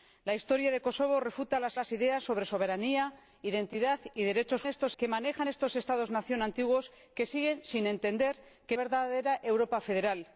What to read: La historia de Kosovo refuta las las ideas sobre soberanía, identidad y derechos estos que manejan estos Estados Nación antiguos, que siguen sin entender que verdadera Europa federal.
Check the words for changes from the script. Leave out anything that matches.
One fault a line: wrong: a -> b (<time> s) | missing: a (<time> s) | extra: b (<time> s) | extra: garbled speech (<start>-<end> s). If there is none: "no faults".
no faults